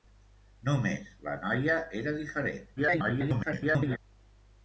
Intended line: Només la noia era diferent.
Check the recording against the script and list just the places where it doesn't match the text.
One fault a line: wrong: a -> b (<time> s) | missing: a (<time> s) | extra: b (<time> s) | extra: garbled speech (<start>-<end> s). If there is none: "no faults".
extra: garbled speech (2.8-4.0 s)